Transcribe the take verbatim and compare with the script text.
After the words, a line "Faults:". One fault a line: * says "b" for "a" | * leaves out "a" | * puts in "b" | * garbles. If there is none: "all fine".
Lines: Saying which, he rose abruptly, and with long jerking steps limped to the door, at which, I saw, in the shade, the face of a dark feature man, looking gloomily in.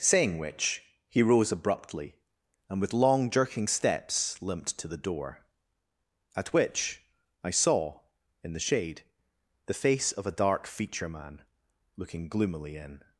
Saying which, he rose abruptly, and with long jerking steps limped to the door, at which, I saw, in the shade, the face of a dark feature man, looking gloomily in.
Faults:
all fine